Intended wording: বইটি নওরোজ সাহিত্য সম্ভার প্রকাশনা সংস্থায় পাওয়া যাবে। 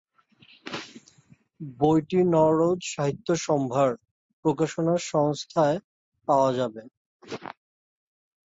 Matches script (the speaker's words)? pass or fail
pass